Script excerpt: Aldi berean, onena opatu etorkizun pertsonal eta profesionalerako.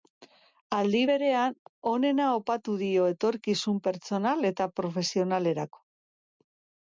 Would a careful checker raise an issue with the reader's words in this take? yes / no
yes